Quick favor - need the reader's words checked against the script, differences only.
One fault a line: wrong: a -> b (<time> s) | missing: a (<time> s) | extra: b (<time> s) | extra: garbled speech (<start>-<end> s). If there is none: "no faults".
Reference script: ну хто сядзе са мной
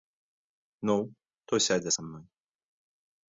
no faults